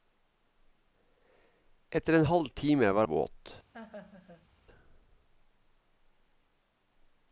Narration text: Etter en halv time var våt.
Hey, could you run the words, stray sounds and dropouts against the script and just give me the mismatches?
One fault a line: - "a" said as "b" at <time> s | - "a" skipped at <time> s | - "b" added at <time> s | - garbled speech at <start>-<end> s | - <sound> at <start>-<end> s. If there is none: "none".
- laugh at 3.7-4.5 s